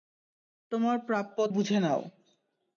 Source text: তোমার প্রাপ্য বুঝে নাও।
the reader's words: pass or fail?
pass